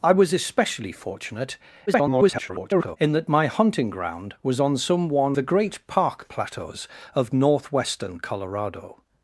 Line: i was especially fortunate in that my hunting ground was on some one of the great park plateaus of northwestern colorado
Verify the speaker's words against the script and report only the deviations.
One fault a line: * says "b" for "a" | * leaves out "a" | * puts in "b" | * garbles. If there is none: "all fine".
* garbles
* leaves out "of"